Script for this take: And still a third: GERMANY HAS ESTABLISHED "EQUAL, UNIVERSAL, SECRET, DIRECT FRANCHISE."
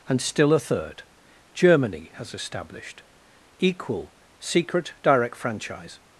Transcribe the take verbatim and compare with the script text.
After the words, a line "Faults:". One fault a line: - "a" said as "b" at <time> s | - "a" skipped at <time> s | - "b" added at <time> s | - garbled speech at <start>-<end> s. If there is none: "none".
And still a third: GERMANY HAS ESTABLISHED "EQUAL, SECRET, DIRECT FRANCHISE."
Faults:
- "UNIVERSAL" skipped at 4.2 s